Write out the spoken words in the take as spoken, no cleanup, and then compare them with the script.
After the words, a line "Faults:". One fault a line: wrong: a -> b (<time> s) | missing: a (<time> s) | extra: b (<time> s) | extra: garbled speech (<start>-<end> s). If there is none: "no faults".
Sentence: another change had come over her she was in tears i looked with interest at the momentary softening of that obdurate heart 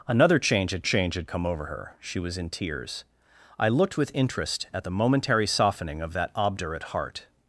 another change had change had come over her she was in tears i looked with interest at the momentary softening of that obdurate heart
Faults:
extra: change had (0.8 s)